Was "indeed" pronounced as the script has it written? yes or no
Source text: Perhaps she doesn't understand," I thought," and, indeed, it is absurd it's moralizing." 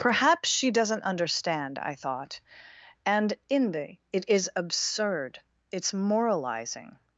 no